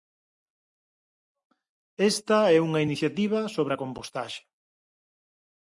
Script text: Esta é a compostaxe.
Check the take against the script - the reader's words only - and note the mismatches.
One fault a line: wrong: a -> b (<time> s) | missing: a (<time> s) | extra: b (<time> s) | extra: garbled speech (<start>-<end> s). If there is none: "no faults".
extra: unha iniciativa sobre (2.7 s)